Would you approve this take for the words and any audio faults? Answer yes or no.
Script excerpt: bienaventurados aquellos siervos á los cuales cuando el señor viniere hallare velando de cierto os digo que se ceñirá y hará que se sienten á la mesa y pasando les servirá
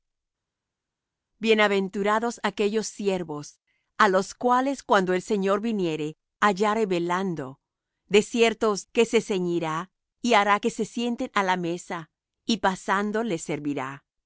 no